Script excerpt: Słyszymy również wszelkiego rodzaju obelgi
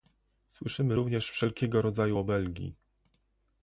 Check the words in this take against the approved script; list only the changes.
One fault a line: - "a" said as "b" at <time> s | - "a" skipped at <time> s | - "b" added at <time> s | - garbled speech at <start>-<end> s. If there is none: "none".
none